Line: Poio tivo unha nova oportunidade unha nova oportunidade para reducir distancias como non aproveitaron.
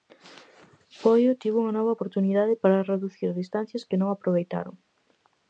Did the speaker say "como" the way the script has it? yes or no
no